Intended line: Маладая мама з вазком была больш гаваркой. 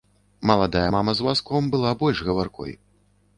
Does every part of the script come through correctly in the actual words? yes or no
yes